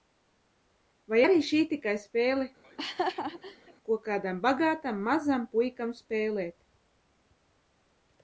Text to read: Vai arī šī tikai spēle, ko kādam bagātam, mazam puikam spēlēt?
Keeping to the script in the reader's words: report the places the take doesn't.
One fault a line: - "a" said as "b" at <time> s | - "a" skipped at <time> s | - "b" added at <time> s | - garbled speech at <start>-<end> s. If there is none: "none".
none